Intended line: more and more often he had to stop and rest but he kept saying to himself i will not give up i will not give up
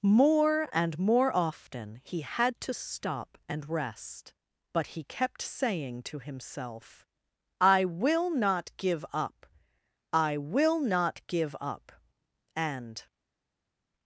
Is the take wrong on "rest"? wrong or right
right